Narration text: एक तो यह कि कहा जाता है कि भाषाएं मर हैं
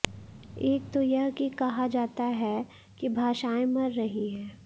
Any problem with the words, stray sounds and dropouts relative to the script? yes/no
yes